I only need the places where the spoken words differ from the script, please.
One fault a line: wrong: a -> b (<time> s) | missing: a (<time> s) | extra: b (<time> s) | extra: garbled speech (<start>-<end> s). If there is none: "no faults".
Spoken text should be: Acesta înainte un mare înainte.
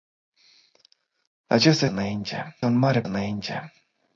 no faults